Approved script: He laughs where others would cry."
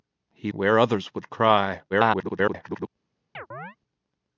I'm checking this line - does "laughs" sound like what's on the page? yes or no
no